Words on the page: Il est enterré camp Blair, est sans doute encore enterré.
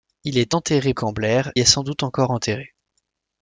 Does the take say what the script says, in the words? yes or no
yes